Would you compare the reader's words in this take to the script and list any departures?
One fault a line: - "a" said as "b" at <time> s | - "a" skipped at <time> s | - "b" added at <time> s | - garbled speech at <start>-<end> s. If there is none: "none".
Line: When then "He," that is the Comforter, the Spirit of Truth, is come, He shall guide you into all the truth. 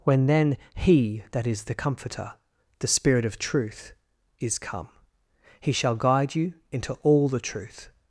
none